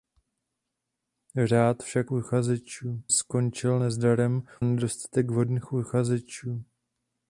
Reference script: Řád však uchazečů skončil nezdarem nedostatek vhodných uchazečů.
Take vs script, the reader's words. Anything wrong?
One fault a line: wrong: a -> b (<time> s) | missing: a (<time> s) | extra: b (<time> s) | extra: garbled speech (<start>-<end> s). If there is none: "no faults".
no faults